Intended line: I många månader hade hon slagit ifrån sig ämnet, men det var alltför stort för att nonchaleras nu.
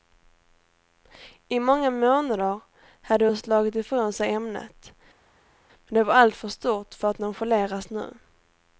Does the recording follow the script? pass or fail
pass